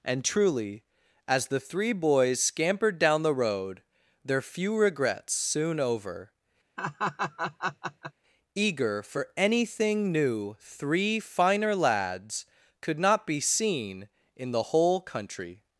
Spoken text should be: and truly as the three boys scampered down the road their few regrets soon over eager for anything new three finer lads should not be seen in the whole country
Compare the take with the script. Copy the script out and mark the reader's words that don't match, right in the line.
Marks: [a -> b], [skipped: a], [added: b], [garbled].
and truly as the three boys scampered down the road their few regrets soon over eager for anything new three finer lads [should -> could] not be seen in the whole country